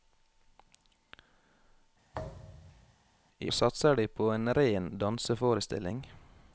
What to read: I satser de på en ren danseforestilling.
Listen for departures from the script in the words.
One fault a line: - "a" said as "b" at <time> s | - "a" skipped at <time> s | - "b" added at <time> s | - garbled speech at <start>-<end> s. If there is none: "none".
none